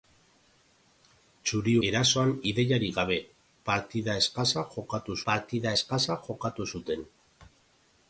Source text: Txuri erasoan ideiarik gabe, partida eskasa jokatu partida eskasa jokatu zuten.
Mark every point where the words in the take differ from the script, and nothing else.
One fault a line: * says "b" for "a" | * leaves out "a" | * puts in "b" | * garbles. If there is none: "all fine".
all fine